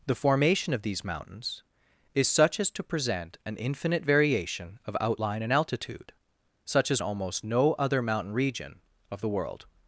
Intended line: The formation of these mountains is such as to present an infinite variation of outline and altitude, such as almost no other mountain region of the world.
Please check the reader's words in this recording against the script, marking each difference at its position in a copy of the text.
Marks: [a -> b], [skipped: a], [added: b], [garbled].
The formation of these mountains is such as to present an infinite variation of outline and altitude, such as almost no other mountain region of the world.